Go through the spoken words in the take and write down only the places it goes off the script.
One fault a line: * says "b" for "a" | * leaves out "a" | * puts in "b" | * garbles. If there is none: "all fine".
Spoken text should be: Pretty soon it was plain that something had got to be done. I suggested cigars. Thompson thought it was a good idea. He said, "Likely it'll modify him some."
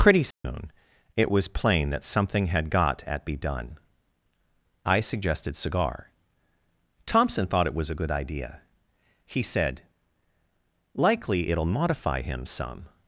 * says "at" for "to"
* says "cigar" for "cigars"